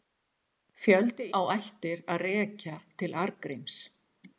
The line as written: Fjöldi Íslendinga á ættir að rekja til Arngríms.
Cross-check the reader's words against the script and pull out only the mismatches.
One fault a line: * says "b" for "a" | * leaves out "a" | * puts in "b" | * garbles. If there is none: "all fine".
* leaves out "Íslendinga"